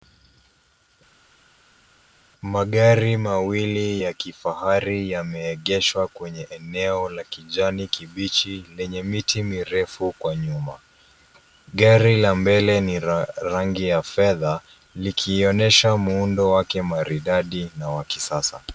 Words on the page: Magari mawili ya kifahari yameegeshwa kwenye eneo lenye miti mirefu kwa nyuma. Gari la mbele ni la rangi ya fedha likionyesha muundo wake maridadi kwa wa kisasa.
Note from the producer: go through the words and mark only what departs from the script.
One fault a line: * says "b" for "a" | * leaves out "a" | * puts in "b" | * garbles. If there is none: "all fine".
* puts in "la kijani kibichi"
* says "na" for "kwa"